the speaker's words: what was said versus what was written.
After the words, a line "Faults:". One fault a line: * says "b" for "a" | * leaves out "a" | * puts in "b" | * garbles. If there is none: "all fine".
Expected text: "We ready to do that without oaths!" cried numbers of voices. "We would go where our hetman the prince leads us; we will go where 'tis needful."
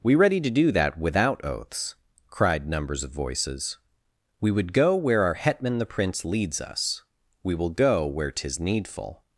"We ready to do that without oaths!" cried numbers of voices. "We would go where our hetman the prince leads us; we will go where 'tis needful."
Faults:
all fine